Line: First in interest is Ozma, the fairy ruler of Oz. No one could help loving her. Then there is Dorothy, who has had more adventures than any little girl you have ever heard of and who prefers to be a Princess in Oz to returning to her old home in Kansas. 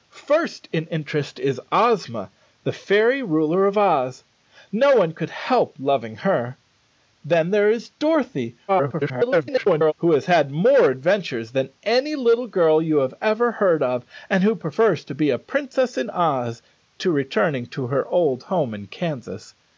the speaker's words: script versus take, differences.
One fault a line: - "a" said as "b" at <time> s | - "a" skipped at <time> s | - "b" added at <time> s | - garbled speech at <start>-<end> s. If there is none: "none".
- garbled speech at 8.7-9.9 s